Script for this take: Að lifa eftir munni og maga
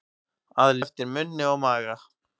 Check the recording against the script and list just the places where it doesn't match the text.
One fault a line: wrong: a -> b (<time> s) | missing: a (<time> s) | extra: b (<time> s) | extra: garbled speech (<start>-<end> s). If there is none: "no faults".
missing: lifa (0.7 s)